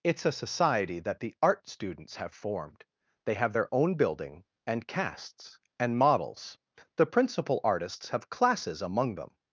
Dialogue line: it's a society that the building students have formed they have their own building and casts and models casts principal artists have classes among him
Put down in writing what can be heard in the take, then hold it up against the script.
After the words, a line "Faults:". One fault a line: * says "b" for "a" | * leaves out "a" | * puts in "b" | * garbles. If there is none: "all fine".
it's a society that the art students have formed they have their own building and casts and models the principal artists have classes among them
Faults:
* says "art" for "building"
* says "the" for "casts"
* says "them" for "him"